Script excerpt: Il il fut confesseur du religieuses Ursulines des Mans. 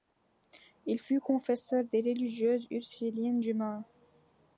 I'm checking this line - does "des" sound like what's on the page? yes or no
no